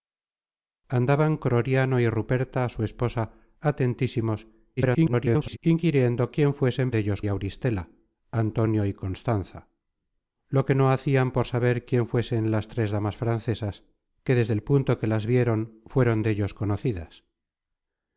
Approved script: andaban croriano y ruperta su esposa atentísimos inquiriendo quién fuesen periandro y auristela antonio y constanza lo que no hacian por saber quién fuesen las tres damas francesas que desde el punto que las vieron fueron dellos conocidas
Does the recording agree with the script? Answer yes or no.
no